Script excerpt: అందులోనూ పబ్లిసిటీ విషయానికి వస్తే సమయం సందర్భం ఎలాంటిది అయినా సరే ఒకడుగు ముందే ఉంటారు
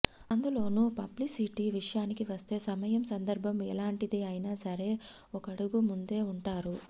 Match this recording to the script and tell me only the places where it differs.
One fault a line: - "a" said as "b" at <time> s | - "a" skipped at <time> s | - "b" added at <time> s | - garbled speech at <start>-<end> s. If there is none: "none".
none